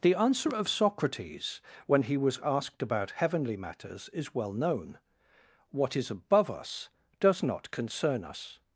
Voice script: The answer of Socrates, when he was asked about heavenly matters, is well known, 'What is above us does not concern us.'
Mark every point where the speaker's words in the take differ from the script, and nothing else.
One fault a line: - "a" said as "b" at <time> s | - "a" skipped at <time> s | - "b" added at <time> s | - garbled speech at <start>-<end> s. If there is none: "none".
none